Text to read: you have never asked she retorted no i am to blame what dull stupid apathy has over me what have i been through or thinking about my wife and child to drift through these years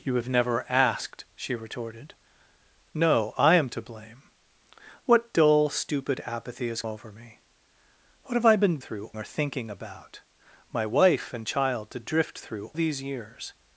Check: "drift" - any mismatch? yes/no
no